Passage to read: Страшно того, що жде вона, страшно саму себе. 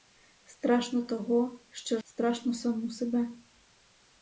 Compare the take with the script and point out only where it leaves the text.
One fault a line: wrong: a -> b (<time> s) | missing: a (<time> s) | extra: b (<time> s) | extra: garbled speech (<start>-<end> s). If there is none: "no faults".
missing: жде вона (2.0 s)